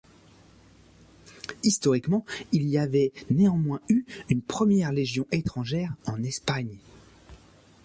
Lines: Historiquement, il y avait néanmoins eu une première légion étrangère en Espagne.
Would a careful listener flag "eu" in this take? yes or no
no